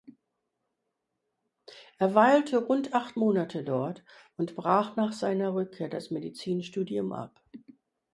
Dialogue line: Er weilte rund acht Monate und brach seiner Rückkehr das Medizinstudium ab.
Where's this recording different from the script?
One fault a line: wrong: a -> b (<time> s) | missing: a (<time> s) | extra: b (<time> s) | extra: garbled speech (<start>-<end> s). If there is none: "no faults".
extra: dort (3.6 s)
extra: nach (4.9 s)